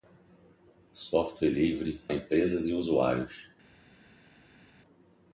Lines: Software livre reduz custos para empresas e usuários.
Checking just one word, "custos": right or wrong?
wrong